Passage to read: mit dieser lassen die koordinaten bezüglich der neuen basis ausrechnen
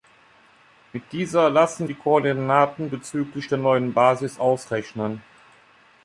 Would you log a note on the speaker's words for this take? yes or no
no